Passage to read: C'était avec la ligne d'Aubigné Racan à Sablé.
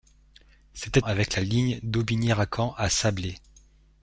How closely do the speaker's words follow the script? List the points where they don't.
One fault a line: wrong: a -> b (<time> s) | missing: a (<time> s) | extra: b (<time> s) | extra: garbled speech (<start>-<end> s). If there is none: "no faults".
no faults